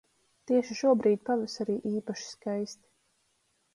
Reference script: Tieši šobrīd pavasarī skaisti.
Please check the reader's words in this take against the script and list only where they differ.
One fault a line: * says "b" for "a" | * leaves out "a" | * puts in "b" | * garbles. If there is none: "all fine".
* puts in "īpaši"